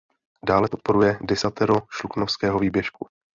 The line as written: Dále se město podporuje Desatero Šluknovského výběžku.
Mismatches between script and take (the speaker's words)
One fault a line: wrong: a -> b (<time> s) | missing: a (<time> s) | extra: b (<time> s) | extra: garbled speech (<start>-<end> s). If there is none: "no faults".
missing: se město (0.7 s)